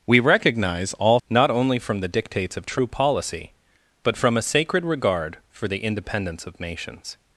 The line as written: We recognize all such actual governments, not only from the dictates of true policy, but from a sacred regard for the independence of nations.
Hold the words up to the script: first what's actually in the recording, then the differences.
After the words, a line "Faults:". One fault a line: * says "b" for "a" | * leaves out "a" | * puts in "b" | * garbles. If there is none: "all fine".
We recognize all not only from the dictates of true policy, but from a sacred regard for the independence of nations.
Faults:
* leaves out "such actual governments"